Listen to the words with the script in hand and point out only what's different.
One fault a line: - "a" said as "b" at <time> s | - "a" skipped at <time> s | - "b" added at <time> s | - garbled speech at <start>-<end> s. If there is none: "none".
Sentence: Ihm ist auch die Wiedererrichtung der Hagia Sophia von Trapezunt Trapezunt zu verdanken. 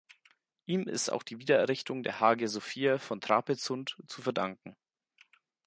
- "Trapezunt" skipped at 4.0 s